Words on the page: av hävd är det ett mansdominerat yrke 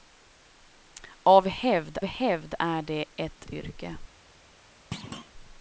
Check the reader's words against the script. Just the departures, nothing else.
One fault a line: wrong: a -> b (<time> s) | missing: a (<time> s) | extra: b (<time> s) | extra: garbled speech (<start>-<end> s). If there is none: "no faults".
extra: hävd (2.0 s)
missing: mansdominerat (3.5 s)